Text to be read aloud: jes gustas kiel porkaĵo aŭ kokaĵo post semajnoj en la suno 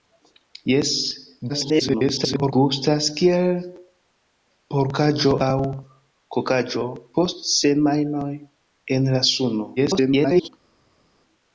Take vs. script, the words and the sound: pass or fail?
fail